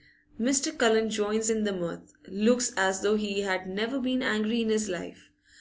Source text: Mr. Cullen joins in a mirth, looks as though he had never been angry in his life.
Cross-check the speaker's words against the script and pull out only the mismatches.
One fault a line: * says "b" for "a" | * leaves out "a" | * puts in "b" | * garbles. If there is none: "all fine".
* says "the" for "a"